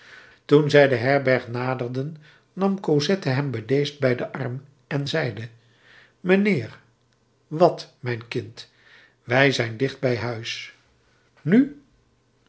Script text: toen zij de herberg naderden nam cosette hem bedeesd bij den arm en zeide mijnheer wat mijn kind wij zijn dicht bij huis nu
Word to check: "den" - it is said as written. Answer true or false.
true